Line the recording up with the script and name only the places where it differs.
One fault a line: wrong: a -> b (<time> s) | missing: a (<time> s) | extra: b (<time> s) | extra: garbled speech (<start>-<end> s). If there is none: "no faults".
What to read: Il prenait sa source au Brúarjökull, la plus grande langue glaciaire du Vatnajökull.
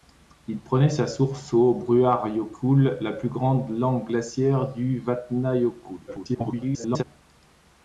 extra: garbled speech (6.1-7.0 s)